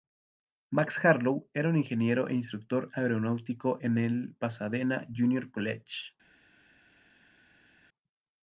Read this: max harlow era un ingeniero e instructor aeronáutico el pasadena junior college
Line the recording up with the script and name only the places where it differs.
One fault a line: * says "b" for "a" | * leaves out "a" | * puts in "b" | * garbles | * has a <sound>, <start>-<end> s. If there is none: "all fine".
* puts in "en"